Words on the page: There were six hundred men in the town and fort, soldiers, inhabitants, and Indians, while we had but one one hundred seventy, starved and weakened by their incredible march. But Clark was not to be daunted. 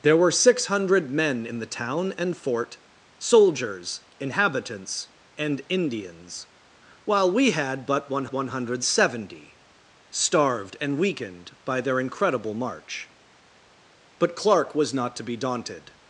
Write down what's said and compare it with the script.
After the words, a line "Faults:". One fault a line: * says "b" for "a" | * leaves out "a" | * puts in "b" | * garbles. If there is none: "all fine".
There were six hundred men in the town and fort, soldiers, inhabitants, and Indians, while we had but one one hundred seventy, starved and weakened by their incredible march. But Clark was not to be daunted.
Faults:
all fine